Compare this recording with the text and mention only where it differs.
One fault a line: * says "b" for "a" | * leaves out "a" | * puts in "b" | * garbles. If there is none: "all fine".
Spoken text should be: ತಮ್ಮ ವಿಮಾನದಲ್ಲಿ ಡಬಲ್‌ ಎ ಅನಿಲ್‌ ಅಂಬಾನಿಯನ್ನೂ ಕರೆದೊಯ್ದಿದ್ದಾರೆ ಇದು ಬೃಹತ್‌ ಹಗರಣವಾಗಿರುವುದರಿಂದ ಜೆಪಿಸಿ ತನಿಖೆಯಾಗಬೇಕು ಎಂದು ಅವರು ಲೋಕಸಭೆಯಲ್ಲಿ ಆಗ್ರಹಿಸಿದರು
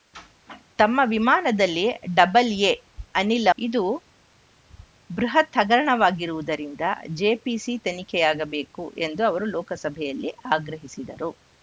* leaves out "ಅಂಬಾನಿಯನ್ನೂ ಕರೆದೊಯ್ದಿದ್ದಾರೆ"